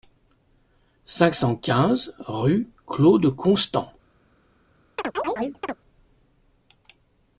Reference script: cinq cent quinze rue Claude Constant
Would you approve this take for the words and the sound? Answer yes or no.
no